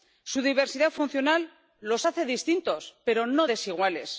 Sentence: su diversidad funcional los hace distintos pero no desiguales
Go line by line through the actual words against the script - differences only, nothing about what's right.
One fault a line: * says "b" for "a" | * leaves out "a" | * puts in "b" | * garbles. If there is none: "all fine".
all fine